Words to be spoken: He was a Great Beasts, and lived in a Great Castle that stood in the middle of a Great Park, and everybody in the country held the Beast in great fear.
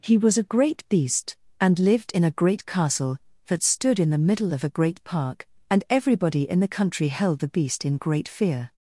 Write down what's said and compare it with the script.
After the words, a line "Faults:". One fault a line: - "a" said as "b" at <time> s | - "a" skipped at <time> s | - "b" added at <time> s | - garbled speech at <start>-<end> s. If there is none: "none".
He was a Great Beast, and lived in a Great Castle that stood in the middle of a Great Park, and everybody in the country held the Beast in great fear.
Faults:
- "Beasts" said as "Beast" at 0.9 s